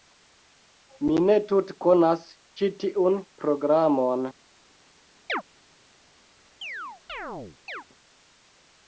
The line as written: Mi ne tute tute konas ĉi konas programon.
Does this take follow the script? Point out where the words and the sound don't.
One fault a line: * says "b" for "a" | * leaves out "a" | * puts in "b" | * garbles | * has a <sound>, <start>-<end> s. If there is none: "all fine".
* leaves out "tute"
* says "tiun" for "konas"
* has a chirp, 5.3-5.4 s
* has a chirp, 6.6-7.8 s